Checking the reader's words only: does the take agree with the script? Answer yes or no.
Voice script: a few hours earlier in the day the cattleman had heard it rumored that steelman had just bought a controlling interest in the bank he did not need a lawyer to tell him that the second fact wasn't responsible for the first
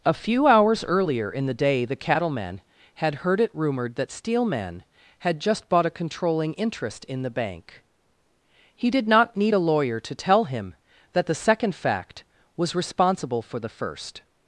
no